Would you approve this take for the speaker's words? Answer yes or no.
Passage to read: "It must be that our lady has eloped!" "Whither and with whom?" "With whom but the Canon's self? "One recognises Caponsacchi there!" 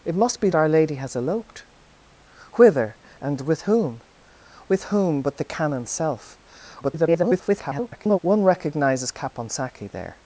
no